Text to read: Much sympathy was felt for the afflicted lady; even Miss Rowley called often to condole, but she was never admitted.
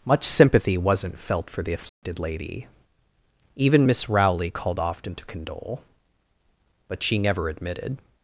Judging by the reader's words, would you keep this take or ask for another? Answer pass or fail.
fail